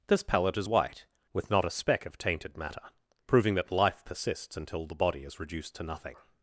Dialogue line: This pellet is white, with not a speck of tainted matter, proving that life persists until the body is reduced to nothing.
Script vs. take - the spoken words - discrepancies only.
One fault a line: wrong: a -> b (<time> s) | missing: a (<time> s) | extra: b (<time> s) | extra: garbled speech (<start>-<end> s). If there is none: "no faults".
no faults